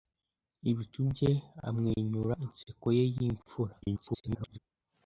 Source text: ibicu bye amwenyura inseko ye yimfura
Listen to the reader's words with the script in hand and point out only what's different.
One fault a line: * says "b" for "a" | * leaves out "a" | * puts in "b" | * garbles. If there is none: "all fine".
* garbles